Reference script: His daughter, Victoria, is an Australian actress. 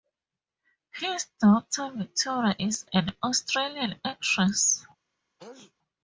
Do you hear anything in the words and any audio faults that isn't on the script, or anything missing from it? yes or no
yes